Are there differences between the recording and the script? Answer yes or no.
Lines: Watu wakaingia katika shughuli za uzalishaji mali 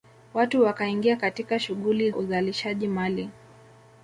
yes